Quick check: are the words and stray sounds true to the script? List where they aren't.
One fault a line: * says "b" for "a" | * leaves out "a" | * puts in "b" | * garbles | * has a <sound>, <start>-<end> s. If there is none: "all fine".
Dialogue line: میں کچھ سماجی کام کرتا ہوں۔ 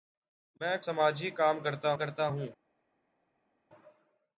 * leaves out "کچھ"
* puts in "کرتا"